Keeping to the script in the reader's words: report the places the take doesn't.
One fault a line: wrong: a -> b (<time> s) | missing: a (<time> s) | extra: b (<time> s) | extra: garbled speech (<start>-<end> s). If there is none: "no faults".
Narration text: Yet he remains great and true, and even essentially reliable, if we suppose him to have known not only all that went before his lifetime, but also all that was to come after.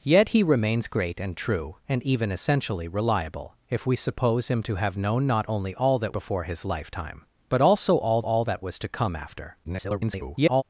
missing: went (6.2 s)
extra: all (8.2 s)
extra: garbled speech (9.6-10.6 s)